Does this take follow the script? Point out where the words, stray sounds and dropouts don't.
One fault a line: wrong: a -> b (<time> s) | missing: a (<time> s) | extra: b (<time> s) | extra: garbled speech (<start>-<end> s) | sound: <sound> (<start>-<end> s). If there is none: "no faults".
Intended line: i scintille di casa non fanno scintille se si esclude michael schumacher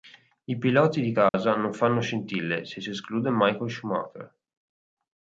wrong: scintille -> piloti (0.6 s)
sound: dropout (1.3-1.3 s)